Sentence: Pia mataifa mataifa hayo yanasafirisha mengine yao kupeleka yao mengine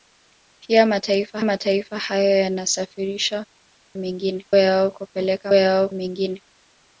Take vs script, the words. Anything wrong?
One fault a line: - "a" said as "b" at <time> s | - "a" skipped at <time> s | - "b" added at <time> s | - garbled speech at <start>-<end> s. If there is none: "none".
none